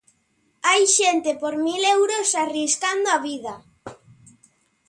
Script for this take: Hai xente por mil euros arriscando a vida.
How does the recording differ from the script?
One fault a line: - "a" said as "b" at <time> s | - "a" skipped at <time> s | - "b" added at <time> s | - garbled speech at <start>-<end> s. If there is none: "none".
none